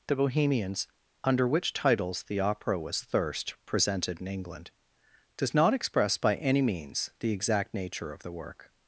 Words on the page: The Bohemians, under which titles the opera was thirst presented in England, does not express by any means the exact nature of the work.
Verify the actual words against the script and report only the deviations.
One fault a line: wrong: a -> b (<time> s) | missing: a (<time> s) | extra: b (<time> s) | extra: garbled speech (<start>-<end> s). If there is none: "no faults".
no faults